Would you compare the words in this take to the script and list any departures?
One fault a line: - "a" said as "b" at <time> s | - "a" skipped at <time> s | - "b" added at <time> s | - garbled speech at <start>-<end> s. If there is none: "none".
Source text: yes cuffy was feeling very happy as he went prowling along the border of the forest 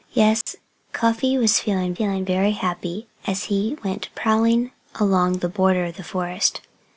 - "feeling" added at 1.9 s